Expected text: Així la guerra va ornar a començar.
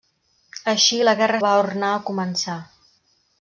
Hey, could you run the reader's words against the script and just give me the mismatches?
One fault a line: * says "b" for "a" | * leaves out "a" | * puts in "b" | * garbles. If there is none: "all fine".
all fine